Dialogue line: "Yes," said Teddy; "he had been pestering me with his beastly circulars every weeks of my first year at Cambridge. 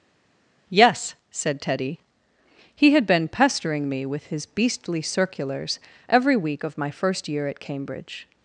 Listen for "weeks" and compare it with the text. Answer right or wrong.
wrong